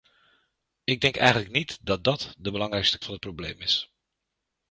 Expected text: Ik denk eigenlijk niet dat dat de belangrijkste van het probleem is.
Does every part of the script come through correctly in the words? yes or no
yes